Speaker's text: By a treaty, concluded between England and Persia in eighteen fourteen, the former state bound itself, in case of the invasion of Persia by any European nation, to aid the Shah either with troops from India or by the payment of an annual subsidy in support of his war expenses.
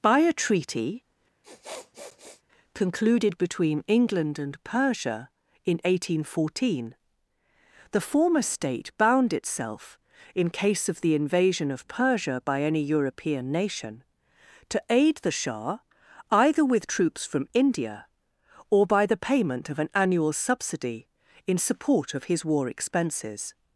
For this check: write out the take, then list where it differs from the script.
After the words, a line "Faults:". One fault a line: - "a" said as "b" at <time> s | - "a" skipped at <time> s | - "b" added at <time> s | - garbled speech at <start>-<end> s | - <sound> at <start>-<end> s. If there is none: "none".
By a treaty, concluded between England and Persia in eighteen fourteen, the former state bound itself, in case of the invasion of Persia by any European nation, to aid the Shah either with troops from India or by the payment of an annual subsidy in support of his war expenses.
Faults:
- sniff at 1.4-2.4 s